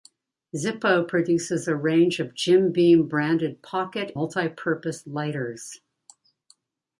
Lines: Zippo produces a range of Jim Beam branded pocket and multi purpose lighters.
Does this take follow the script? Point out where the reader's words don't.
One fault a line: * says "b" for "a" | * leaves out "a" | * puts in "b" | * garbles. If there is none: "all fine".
* leaves out "and"